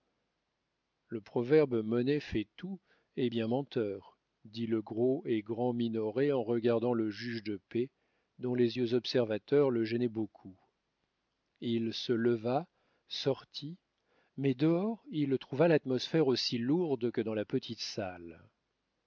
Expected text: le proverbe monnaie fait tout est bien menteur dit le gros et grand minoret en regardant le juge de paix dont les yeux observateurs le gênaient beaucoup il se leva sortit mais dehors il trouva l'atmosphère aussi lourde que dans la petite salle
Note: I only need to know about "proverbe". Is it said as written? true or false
true